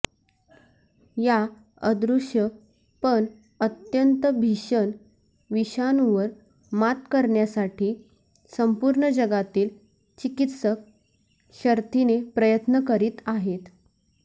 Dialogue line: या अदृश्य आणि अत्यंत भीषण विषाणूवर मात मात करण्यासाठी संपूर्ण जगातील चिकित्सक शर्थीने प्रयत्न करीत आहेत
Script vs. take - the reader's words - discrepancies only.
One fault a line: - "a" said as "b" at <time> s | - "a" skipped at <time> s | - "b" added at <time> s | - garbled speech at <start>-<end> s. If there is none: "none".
- "आणि" said as "पण" at 3.0 s
- "मात" skipped at 7.0 s